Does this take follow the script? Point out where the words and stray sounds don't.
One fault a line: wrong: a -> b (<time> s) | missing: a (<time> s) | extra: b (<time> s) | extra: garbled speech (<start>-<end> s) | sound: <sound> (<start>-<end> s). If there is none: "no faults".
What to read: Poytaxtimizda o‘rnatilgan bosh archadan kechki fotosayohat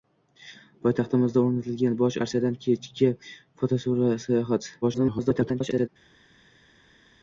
extra: garbled speech (4.8-5.9 s)